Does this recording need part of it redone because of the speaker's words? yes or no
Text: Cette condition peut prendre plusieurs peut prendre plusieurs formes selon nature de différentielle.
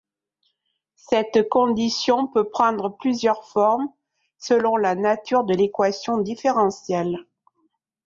yes